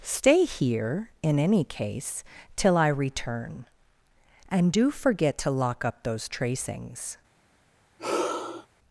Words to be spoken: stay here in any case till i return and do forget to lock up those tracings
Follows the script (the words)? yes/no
yes